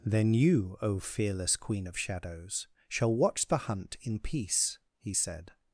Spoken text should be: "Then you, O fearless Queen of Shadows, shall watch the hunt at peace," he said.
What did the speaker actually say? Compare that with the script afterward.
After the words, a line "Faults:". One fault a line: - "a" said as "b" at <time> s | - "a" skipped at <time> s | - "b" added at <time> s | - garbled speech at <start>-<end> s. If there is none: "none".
"Then you, O fearless Queen of Shadows, shall watch the hunt in peace," he said.
Faults:
- "at" said as "in" at 4.0 s